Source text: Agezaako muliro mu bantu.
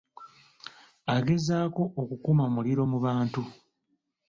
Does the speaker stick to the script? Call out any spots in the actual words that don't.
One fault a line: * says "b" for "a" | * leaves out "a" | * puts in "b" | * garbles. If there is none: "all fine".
* puts in "okukuma"